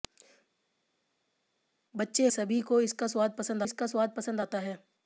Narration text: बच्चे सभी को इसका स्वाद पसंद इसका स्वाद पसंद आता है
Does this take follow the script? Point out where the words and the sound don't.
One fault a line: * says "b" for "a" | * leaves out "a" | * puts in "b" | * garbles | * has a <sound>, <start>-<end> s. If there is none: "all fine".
all fine